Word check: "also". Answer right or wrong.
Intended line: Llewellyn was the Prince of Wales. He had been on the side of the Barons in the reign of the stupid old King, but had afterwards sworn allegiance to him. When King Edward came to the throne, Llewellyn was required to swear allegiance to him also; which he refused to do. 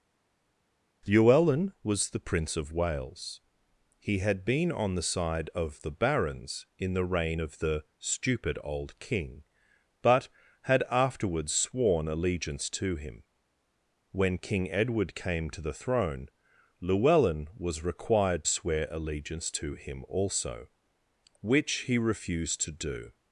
right